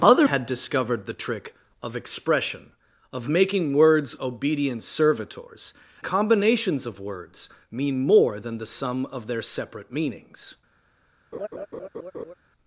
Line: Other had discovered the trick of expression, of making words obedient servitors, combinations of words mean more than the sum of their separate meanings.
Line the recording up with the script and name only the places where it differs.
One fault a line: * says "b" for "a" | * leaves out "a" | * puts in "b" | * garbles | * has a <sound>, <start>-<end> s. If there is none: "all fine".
* has a laugh, 11.3-12.3 s